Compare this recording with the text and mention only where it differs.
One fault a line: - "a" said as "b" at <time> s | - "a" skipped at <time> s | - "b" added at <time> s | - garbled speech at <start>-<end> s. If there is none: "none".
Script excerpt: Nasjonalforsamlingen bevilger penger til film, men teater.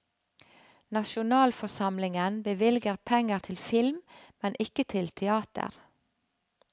- "ikke til" added at 4.6 s